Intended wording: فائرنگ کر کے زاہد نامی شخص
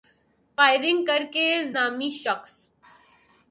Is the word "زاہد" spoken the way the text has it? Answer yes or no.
no